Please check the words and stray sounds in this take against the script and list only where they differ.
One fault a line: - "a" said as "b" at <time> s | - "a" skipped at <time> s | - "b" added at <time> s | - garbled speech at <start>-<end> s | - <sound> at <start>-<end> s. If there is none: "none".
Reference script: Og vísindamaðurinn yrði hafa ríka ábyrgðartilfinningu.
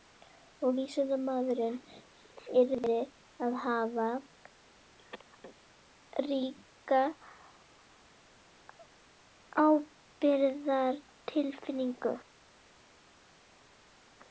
- "að" added at 3.5 s